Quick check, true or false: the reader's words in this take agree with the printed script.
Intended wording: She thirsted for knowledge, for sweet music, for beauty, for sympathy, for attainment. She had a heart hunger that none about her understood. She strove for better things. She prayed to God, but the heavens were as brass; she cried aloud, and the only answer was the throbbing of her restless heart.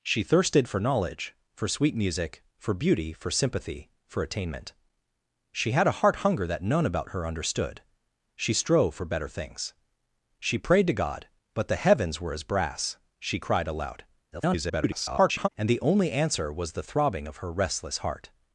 false